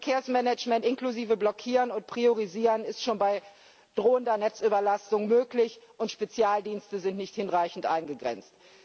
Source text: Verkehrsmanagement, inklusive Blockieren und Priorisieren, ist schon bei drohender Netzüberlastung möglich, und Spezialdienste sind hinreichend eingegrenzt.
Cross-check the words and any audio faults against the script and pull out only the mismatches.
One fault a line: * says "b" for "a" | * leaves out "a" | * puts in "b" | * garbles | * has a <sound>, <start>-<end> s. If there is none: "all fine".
* puts in "nicht"